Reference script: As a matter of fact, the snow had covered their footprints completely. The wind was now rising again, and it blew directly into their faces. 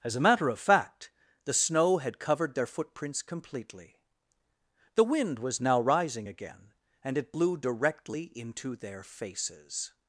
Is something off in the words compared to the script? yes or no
no